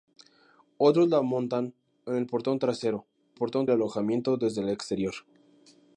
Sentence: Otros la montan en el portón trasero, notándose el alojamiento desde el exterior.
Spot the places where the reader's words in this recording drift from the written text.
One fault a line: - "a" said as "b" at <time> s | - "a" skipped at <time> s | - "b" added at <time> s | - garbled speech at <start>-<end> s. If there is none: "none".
- "notándose" said as "portón" at 3.3 s